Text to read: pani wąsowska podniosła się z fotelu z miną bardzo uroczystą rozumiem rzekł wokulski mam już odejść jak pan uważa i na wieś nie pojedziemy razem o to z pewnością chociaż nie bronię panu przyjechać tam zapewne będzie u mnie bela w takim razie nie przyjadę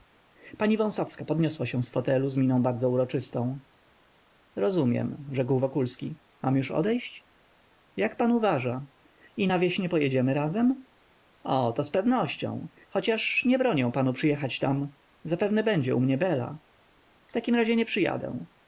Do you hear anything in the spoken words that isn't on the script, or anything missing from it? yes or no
no